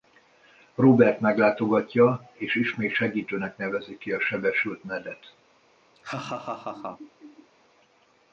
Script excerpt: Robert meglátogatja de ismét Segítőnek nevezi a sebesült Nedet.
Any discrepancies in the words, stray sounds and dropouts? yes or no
yes